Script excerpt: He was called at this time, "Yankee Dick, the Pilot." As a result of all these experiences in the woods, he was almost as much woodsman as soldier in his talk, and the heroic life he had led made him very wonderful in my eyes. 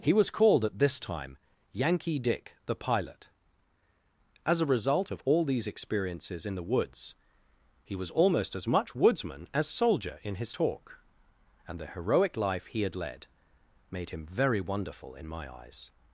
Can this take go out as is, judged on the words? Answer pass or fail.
pass